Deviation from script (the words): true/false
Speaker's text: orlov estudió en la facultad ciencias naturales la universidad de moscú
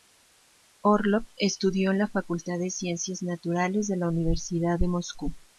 true